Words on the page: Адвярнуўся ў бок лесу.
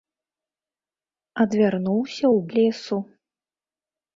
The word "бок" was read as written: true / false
false